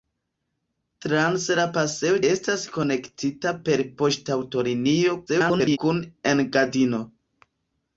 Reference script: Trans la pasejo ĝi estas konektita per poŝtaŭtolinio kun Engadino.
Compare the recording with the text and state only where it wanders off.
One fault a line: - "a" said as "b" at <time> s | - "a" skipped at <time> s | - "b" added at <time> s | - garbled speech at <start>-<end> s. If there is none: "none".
- "ĝi" skipped at 2.2 s
- garbled speech at 5.3-5.8 s